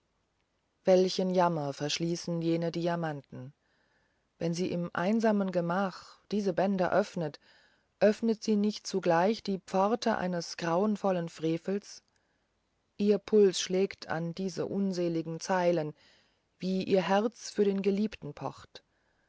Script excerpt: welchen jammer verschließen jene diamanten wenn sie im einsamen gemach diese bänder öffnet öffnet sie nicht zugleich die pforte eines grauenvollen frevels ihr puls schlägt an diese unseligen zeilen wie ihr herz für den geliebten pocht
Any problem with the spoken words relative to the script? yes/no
no